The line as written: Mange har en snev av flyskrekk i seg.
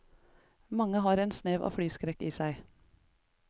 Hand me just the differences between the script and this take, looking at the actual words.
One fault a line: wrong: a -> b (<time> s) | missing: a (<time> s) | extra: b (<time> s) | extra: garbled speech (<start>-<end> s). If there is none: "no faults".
no faults